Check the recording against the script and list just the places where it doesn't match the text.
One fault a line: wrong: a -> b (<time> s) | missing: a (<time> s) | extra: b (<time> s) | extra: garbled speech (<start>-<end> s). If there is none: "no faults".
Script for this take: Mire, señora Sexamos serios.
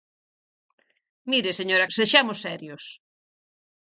no faults